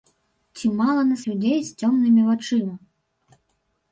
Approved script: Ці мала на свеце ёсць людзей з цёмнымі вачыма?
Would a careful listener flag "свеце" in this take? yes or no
yes